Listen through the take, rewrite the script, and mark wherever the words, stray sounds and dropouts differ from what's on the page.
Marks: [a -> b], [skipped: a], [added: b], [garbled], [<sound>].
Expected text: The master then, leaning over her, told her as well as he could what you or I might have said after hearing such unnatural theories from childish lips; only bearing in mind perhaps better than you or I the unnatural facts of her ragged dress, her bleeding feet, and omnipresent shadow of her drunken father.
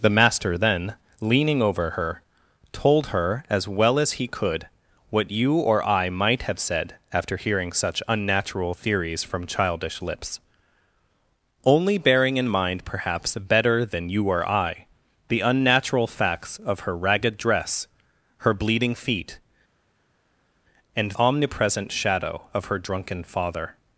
The master then, leaning over her, told her as well as he could what you or I might have said after hearing such unnatural theories from childish lips; only bearing in mind perhaps better than you or I the unnatural facts of her ragged dress, her bleeding feet, and omnipresent shadow of her drunken father.